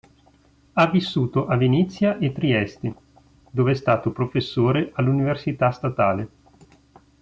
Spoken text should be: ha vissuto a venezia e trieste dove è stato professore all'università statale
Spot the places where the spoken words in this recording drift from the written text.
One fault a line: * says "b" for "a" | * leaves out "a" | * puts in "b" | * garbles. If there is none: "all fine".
all fine